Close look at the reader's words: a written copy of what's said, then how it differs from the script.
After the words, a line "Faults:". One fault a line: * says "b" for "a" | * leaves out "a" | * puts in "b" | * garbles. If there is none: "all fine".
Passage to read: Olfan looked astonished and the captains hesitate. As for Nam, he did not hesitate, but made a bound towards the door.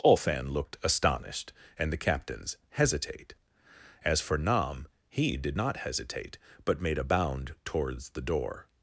Olfan looked astonished and the captains hesitate. As for Nam, he did not hesitate, but made a bound towards the door.
Faults:
all fine